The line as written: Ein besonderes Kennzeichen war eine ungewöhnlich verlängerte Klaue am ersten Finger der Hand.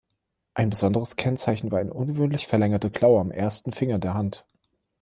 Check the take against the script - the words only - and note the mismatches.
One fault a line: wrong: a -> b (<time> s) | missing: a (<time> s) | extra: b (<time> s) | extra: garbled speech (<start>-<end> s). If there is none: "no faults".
no faults